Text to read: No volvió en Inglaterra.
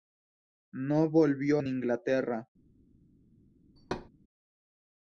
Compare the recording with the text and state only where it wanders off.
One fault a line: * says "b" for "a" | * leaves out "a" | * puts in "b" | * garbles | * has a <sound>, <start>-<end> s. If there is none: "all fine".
* has a thud, 3.8-4.1 s